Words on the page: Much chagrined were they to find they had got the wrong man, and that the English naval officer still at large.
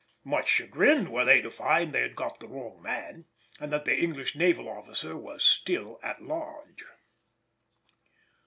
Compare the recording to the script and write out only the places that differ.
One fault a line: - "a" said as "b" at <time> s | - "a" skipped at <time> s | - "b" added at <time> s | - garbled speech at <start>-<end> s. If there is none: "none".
- "was" added at 5.1 s